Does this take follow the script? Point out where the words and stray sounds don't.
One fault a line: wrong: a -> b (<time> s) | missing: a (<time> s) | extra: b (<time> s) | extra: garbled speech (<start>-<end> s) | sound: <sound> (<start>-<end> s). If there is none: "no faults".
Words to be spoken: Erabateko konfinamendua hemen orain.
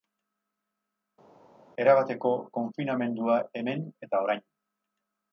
extra: eta (4.1 s)